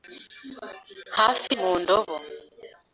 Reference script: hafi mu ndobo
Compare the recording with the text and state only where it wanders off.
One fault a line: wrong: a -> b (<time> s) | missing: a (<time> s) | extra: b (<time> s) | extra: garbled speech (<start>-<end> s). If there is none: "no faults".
no faults